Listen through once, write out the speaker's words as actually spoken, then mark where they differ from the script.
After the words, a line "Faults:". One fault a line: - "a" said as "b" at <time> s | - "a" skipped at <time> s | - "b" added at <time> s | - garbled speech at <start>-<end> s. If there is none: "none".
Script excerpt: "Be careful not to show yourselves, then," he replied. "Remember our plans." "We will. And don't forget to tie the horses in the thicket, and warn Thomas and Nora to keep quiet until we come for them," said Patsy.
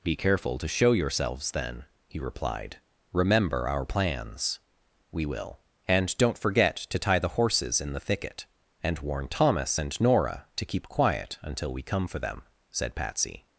"Be careful to show yourselves, then," he replied. "Remember our plans." "We will. And don't forget to tie the horses in the thicket, and warn Thomas and Nora to keep quiet until we come for them," said Patsy.
Faults:
- "not" skipped at 0.6 s